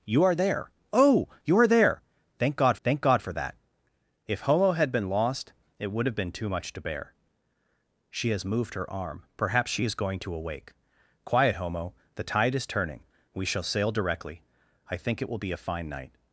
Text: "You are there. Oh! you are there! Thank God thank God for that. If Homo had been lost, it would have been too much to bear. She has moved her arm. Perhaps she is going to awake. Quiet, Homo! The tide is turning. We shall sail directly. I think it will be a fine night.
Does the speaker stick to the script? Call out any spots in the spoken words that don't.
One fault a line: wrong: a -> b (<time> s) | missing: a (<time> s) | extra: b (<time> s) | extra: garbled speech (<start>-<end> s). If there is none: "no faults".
no faults